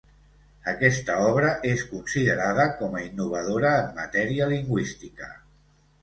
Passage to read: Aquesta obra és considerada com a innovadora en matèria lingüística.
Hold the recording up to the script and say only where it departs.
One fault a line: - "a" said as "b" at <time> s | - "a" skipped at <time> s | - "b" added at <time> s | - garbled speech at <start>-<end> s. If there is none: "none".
none